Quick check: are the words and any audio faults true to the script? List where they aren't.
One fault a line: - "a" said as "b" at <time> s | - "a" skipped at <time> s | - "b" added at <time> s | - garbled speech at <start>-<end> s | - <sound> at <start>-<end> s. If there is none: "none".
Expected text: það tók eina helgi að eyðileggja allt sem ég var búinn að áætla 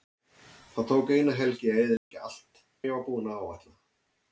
- dropout at 2.0-2.1 s
- "sem" skipped at 2.6 s